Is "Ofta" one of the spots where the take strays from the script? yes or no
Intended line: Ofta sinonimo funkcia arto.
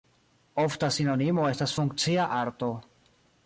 no